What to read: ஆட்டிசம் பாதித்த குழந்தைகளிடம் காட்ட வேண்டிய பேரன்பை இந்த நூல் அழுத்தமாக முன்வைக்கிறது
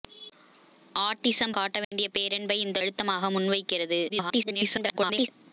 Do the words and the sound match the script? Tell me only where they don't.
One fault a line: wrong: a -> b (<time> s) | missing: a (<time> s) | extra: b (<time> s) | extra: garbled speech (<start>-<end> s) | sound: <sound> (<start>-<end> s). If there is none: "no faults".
missing: பாதித்த குழந்தைகளிடம் (1.5 s)
sound: dropout (1.8-1.9 s)
missing: நூல் (2.8 s)
extra: garbled speech (4.1-5.3 s)